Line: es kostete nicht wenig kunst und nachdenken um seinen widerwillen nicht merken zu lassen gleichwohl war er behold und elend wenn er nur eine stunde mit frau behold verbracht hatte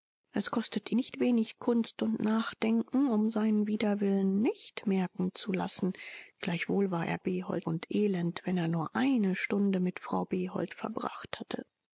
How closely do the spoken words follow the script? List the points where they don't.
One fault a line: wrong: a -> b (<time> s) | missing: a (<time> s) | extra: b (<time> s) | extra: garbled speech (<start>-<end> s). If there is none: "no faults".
no faults